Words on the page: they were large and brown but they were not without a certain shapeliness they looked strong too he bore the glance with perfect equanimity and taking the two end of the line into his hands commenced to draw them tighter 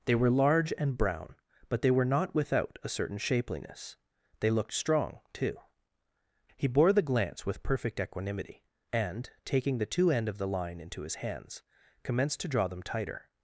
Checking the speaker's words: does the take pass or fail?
pass